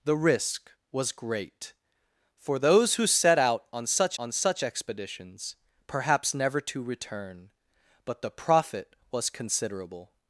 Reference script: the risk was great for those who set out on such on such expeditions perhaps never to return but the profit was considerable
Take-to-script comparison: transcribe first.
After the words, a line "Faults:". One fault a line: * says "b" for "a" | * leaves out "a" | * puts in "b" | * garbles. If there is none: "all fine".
the risk was great for those who set out on such on such expeditions perhaps never to return but the profit was considerable
Faults:
all fine